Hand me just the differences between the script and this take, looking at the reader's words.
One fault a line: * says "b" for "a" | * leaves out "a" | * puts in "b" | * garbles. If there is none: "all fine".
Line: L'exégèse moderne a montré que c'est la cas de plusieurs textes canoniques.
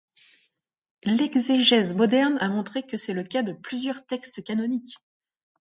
* says "le" for "la"